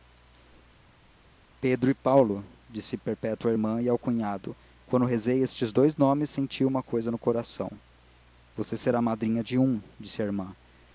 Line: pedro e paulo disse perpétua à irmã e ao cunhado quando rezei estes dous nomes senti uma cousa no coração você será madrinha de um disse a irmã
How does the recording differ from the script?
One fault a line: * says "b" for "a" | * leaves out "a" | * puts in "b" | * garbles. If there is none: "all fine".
all fine